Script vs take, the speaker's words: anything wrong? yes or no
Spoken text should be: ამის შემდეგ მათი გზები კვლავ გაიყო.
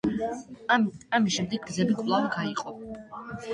yes